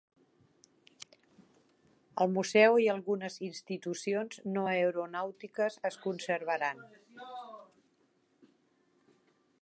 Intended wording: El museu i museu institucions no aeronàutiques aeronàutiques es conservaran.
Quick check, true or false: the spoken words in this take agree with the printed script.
false